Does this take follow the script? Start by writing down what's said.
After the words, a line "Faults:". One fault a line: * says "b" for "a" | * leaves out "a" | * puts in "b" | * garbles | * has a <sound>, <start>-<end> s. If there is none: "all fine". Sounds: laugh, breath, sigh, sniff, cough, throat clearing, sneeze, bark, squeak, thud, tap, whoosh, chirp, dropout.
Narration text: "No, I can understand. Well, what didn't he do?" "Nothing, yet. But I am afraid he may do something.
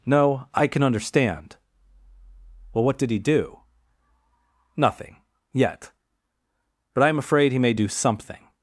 "No, I can understand. Well, what did he do?" "Nothing, yet. But I am afraid he may do something.
Faults:
* says "did" for "didn't"